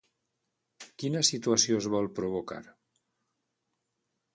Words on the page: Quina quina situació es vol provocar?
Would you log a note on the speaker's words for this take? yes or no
yes